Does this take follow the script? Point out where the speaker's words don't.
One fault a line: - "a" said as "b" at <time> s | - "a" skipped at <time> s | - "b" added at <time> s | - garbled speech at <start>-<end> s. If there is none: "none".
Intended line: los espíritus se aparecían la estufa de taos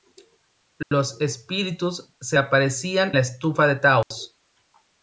none